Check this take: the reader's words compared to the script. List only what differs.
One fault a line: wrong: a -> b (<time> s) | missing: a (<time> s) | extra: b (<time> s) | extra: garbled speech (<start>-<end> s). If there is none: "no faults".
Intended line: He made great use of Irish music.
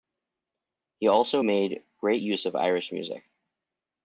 extra: also (1.1 s)